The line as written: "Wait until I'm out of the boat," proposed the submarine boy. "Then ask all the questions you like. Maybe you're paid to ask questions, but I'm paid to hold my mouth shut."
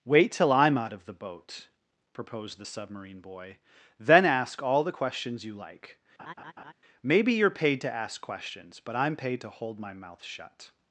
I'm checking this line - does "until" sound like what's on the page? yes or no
no